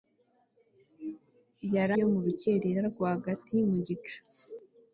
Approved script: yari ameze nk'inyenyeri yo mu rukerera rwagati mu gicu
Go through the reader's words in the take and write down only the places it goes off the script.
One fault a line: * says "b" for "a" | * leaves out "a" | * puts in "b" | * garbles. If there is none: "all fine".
* leaves out "ameze nk'inyenyeri"